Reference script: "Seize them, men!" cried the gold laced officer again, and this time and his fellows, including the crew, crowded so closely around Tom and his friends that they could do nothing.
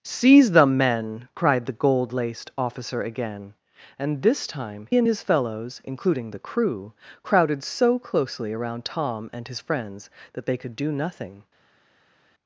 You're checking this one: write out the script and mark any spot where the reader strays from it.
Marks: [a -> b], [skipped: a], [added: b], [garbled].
"Seize them, men!" cried the gold laced officer again, and this time and his fellows, including the crew, crowded so closely around Tom and his friends that they could do nothing.